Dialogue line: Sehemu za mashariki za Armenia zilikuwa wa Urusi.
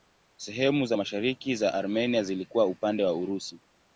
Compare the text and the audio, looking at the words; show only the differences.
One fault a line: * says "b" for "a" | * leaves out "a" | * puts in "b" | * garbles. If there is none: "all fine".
* puts in "upande"